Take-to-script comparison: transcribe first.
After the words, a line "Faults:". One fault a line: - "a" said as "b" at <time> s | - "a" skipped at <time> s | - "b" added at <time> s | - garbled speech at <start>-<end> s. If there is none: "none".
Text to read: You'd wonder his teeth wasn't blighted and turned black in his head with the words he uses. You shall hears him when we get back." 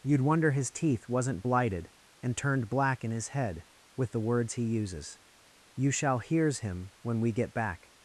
You'd wonder his teeth wasn't blighted and turned black in his head with the words he uses. You shall hears him when we get back."
Faults:
none